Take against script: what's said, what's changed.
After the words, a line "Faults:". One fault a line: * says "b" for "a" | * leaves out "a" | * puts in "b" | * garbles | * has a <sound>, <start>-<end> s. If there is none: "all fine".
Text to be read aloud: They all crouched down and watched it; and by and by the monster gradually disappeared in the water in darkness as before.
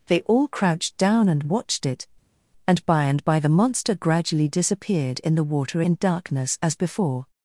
They all crouched down and watched it; and by and by the monster gradually disappeared in the water in darkness as before.
Faults:
all fine